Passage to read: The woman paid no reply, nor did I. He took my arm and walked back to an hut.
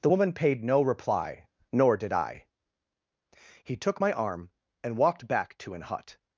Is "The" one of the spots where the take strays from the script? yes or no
no